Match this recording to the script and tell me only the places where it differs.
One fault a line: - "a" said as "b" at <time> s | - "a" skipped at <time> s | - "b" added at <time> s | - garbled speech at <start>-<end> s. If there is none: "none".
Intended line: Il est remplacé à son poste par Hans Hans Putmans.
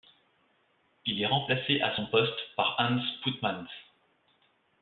- "Hans" skipped at 3.0 s